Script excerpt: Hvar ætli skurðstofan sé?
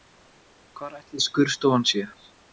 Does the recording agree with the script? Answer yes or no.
yes